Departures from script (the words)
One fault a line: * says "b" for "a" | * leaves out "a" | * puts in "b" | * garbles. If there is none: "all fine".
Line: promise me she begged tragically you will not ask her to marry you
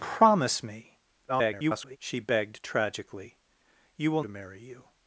* garbles
* leaves out "not ask her"